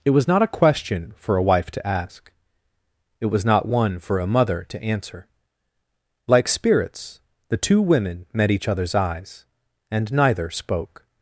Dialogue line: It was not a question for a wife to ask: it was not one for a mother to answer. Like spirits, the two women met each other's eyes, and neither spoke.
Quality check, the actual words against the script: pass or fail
pass